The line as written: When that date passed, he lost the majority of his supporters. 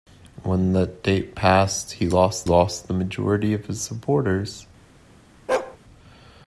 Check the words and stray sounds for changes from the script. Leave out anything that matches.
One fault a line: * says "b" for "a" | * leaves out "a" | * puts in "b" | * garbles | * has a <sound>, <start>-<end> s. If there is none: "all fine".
* puts in "lost"
* has a bark, 5.5-5.8 s